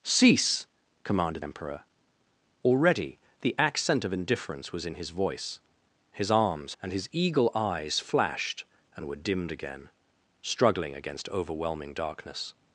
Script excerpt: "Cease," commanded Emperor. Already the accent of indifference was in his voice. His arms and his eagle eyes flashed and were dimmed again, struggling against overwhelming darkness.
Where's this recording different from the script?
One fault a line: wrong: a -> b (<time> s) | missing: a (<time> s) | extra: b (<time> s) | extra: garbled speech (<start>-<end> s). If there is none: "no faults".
no faults